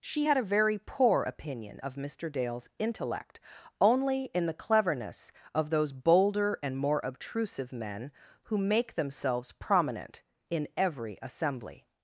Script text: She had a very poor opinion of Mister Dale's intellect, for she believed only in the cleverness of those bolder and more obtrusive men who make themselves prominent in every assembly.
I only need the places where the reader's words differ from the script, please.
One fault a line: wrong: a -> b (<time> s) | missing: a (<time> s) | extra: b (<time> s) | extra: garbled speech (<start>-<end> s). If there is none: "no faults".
missing: for she believed (3.4 s)